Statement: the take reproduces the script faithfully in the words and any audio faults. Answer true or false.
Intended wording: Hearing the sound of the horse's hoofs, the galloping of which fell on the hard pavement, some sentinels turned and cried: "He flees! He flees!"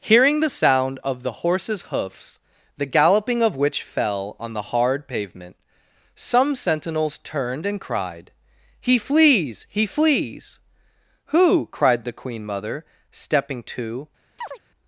false